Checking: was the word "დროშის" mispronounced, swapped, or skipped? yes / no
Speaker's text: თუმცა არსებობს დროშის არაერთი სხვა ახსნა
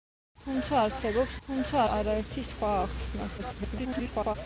yes